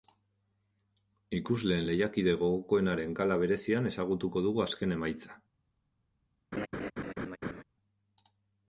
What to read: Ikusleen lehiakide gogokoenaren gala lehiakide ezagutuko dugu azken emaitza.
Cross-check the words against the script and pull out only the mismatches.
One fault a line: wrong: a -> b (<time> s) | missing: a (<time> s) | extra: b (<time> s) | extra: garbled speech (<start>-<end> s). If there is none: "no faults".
wrong: lehiakide -> berezian (3.4 s)